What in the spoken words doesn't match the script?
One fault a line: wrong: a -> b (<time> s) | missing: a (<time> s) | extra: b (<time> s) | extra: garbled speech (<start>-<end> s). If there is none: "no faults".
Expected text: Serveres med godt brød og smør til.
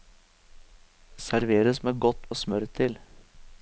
missing: brød (2.3 s)